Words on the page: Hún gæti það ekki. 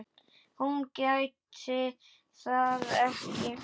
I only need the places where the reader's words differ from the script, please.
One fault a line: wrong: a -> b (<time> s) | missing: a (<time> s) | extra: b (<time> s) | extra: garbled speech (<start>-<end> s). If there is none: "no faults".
no faults